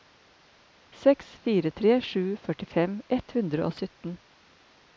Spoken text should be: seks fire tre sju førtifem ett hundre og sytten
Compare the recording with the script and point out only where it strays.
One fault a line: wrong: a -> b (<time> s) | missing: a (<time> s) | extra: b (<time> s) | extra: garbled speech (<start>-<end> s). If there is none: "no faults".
no faults